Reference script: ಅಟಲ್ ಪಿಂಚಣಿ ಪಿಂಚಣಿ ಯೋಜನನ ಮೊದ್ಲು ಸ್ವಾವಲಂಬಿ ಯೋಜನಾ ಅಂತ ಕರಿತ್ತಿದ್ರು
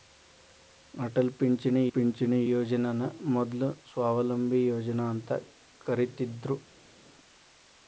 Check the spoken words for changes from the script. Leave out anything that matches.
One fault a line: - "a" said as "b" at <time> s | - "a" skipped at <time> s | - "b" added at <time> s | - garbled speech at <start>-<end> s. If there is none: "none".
none